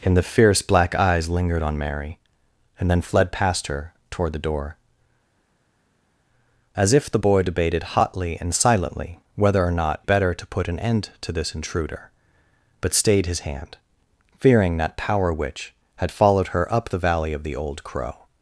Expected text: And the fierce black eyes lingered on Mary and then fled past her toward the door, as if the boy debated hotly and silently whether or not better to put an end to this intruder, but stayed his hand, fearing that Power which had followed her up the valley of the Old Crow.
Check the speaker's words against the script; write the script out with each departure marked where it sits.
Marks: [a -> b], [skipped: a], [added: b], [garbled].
And the fierce black eyes lingered on Mary and then fled past her toward the door, as if the boy debated hotly and silently whether or not better to put an end to this intruder, but stayed his hand, fearing that Power which had followed her up the valley of the Old Crow.